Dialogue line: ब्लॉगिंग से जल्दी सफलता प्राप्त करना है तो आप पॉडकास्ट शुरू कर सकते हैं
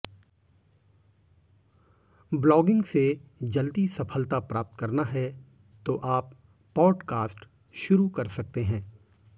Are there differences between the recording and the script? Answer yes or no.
no